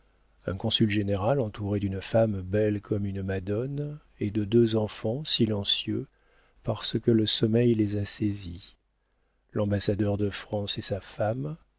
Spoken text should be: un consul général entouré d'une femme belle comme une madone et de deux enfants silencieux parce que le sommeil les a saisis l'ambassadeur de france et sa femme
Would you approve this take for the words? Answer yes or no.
yes